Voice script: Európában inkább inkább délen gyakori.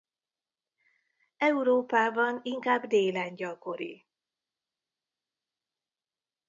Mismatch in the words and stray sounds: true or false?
true